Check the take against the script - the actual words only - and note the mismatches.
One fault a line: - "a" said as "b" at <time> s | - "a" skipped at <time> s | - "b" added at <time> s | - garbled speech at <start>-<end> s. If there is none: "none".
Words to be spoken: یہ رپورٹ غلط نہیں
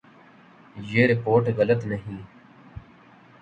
none